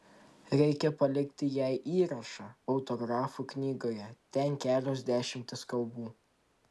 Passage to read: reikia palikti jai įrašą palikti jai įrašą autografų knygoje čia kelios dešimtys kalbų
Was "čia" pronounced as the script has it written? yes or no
no